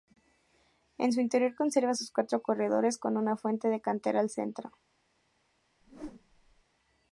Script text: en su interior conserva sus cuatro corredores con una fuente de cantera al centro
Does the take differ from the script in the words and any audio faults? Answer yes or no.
yes